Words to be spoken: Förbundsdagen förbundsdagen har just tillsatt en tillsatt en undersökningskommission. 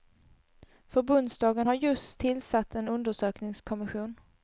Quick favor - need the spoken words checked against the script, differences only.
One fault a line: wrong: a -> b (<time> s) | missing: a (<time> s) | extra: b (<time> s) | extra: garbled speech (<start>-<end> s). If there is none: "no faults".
missing: förbundsdagen (1.7 s)
missing: tillsatt en (2.9 s)